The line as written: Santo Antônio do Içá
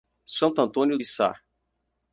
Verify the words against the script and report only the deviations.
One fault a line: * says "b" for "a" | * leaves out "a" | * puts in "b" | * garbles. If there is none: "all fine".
* leaves out "do"